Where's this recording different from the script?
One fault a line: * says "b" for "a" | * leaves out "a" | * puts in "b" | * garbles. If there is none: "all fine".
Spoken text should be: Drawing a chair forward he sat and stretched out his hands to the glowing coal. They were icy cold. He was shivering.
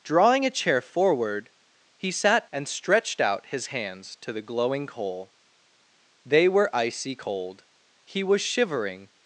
all fine